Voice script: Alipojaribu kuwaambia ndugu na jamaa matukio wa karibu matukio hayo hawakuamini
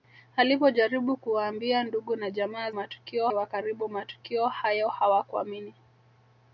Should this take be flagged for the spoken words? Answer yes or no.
no